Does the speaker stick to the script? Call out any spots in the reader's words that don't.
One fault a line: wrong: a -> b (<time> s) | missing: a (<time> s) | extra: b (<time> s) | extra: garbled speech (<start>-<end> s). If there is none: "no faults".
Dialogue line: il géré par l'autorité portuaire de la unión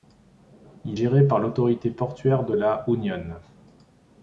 no faults